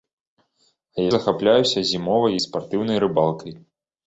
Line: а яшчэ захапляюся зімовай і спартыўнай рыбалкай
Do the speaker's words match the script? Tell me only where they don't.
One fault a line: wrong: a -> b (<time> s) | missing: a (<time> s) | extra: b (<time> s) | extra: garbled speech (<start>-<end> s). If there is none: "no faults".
missing: яшчэ (1.1 s)